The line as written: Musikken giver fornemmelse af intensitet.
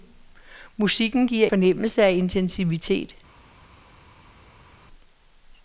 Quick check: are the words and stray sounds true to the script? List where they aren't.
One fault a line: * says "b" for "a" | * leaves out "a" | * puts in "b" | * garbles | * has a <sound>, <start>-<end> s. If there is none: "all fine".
all fine